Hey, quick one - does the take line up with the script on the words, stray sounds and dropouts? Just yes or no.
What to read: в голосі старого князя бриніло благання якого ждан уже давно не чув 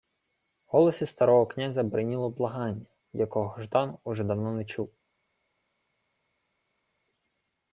yes